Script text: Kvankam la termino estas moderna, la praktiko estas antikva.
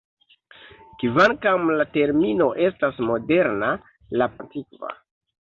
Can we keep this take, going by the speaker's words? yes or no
no